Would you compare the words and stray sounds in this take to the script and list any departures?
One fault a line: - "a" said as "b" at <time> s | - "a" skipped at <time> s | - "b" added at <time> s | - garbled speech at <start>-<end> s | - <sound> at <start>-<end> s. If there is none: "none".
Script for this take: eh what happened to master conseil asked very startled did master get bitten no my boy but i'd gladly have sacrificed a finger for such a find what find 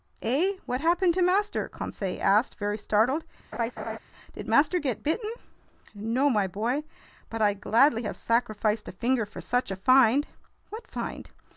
- laugh at 3.5-4.0 s